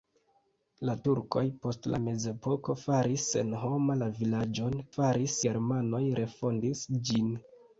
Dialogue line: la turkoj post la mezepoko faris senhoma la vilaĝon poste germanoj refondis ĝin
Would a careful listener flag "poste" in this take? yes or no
yes